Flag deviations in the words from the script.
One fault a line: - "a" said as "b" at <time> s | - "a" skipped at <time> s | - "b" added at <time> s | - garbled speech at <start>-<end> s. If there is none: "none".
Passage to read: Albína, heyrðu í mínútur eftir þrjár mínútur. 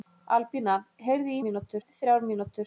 none